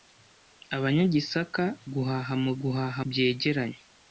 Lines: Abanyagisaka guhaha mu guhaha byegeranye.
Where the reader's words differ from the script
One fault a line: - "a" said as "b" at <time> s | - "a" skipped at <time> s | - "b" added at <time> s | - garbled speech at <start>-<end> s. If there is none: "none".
none